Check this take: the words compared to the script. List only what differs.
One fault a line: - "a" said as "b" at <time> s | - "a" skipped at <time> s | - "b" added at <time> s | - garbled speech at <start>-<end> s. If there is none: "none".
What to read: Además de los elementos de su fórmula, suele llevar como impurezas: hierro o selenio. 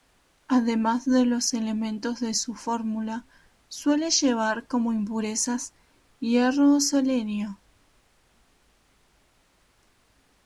none